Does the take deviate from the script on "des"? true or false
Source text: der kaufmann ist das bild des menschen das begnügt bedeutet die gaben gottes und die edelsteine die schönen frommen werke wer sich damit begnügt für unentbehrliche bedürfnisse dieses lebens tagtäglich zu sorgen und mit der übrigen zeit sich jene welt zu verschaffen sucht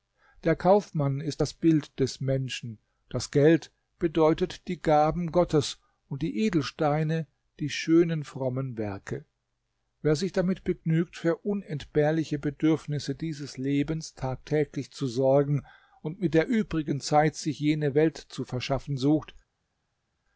false